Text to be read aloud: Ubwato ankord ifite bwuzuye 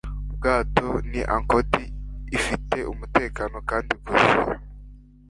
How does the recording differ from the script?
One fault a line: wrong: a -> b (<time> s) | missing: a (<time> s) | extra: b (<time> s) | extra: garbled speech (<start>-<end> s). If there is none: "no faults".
extra: ni (1.1 s)
extra: umutekano kandi (2.9 s)